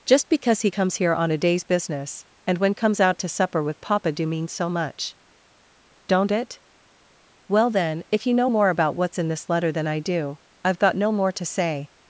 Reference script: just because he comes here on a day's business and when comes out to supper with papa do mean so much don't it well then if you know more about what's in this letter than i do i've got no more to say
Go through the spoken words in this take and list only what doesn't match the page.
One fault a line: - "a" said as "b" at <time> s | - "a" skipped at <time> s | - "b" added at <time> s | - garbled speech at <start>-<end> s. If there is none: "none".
none